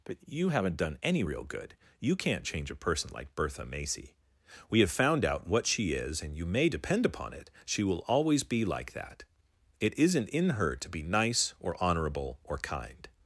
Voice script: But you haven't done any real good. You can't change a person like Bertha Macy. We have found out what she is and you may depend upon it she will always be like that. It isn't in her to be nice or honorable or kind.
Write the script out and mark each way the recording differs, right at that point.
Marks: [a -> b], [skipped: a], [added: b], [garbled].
But you haven't done any real good. You can't change a person like Bertha Macy. We have found out what she is and you may depend upon it she will always be like that. It isn't in her to be nice or honorable or kind.